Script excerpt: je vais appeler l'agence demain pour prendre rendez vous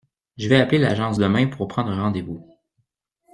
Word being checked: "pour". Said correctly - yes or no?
yes